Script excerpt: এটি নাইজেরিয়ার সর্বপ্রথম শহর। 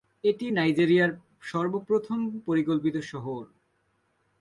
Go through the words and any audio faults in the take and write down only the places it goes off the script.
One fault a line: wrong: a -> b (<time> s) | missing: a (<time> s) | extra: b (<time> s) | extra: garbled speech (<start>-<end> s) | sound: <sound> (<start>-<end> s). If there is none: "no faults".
extra: পরিকল্পিত (2.5 s)